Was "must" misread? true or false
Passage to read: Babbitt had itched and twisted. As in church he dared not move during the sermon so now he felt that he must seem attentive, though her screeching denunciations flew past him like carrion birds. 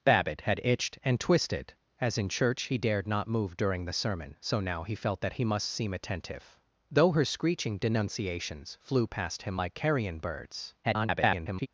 false